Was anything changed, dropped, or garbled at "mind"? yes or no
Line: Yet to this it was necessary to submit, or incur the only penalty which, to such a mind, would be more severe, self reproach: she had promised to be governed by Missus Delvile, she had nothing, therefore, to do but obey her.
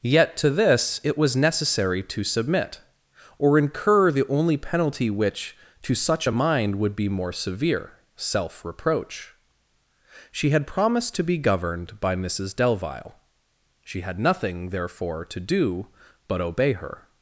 no